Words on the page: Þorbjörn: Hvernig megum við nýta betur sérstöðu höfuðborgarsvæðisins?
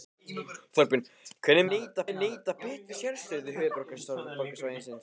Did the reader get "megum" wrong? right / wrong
wrong